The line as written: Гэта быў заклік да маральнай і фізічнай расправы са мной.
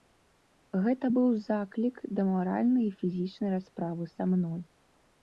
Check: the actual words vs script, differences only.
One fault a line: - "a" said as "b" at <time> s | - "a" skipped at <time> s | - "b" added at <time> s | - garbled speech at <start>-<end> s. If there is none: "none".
none